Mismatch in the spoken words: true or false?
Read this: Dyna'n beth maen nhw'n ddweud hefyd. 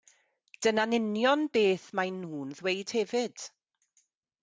true